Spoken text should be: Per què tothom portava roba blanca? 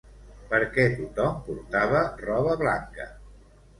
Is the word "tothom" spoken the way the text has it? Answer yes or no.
yes